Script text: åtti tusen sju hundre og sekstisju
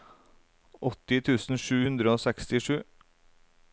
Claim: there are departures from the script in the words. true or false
false